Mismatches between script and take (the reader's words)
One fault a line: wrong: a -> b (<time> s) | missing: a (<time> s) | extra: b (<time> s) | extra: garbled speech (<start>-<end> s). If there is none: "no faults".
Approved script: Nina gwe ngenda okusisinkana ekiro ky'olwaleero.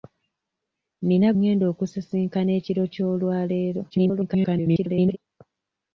missing: gwe (1.3 s)
extra: garbled speech (3.9-5.2 s)